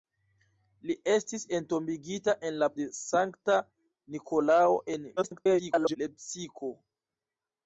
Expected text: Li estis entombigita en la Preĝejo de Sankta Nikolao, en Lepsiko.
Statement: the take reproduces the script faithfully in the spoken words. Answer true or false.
false